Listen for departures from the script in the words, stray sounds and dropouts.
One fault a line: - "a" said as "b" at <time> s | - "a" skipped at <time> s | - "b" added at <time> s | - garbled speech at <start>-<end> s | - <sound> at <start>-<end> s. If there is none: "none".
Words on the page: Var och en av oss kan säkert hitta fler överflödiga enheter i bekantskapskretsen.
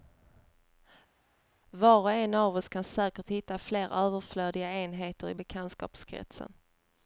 none